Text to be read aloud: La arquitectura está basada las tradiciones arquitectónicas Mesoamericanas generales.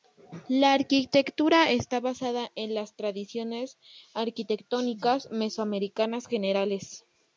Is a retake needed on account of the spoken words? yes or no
yes